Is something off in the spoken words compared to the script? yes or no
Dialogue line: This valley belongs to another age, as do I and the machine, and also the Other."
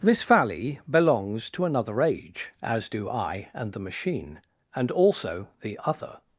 no